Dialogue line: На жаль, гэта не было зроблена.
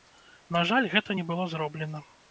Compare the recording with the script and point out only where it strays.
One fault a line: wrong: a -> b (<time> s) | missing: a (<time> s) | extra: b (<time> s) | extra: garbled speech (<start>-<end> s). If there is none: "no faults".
no faults